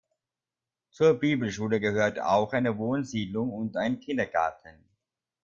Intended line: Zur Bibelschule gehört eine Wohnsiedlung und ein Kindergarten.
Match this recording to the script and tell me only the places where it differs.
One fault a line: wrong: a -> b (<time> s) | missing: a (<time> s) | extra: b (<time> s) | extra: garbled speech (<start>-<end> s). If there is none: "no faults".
extra: auch (2.2 s)